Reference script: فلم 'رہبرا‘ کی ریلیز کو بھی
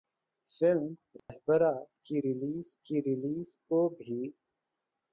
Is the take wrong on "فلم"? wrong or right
right